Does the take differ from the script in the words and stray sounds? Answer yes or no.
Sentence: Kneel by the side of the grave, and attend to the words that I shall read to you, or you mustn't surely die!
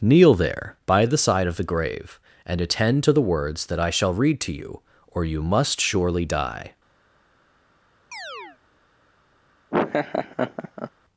yes